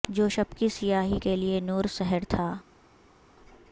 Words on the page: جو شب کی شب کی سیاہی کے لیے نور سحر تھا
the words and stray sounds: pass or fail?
fail